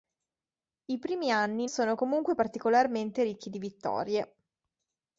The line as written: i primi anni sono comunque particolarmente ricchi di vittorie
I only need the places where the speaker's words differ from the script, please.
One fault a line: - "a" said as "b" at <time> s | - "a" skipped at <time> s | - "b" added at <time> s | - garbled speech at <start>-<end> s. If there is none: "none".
none